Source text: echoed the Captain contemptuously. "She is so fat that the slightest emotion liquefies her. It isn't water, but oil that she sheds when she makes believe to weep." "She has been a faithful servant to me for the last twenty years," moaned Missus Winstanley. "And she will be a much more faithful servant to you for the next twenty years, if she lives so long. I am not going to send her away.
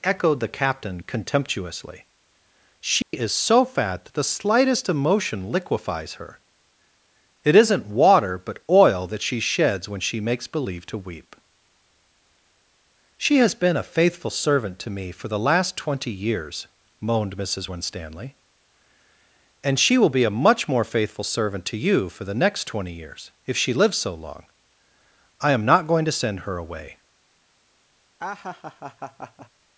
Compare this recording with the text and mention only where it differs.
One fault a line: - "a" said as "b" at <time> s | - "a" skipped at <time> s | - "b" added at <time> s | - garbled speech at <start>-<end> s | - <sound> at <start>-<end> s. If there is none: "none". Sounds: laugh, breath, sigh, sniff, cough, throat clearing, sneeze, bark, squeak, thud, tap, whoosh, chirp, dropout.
- dropout at 3.0-3.1 s
- laugh at 28.2-29.5 s